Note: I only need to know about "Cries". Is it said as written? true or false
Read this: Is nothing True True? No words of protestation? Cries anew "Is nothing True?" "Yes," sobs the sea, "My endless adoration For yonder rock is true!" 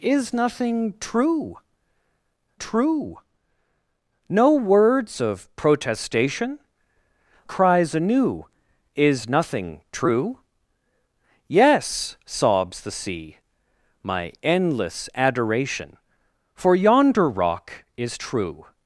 true